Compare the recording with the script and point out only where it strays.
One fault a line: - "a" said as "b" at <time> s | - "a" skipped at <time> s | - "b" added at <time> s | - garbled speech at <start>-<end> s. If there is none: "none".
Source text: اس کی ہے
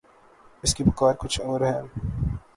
- "پکار کچھ اور" added at 0.8 s